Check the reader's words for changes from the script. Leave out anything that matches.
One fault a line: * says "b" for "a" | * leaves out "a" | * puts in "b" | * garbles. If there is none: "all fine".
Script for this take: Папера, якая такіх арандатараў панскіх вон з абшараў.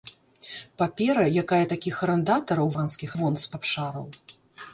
all fine